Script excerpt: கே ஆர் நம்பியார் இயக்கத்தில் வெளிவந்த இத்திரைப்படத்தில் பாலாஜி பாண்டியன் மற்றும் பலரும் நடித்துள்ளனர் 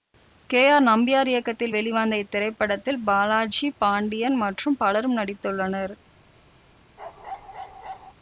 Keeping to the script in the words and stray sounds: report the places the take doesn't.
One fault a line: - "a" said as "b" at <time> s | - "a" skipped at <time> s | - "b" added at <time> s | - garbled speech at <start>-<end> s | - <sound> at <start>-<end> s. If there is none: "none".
- bark at 7.0-8.1 s